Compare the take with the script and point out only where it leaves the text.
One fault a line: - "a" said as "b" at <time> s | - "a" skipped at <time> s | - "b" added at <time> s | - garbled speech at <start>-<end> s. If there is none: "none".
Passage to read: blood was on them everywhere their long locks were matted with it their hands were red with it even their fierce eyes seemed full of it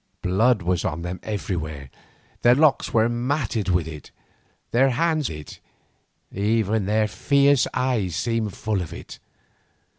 - "long" skipped at 2.5 s
- "were red with" skipped at 5.3 s